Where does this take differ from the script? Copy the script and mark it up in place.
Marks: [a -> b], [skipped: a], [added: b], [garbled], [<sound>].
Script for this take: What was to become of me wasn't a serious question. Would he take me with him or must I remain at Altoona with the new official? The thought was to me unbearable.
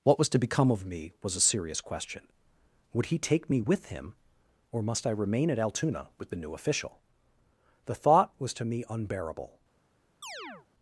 What was to become of me [wasn't -> was] a serious question. Would he take me with him or must I remain at Altoona with the new official? The thought was to me unbearable. [chirp]